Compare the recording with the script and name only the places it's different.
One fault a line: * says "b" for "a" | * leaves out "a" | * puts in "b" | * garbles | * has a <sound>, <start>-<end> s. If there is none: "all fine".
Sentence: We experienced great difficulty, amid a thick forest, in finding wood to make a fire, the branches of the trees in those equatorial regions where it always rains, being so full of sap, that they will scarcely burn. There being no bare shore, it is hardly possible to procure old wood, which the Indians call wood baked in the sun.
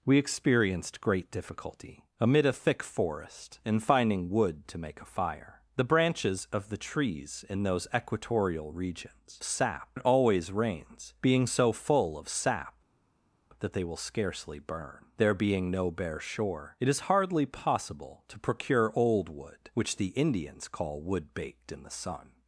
* says "sap" for "where"